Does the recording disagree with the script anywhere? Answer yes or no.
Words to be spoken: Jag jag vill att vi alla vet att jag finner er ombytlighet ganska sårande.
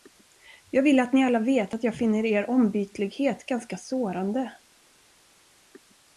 yes